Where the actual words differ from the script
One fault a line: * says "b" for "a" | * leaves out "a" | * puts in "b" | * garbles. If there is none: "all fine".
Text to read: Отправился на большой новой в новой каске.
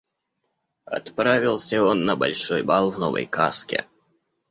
* puts in "он"
* says "бал" for "новой"